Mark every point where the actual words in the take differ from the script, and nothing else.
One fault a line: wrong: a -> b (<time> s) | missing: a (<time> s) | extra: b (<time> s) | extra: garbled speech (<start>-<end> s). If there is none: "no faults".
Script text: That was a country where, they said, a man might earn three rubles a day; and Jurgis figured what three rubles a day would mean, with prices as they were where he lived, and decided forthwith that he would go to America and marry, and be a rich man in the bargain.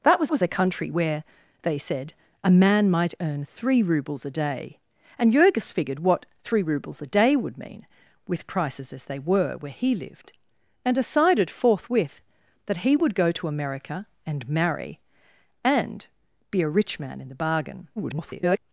extra: was (0.3 s)
extra: garbled speech (18.0-18.6 s)